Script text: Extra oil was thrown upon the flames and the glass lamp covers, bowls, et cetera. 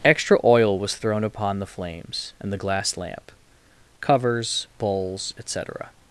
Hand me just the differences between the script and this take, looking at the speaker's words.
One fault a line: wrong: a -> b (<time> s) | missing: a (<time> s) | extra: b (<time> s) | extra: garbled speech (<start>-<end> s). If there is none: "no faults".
no faults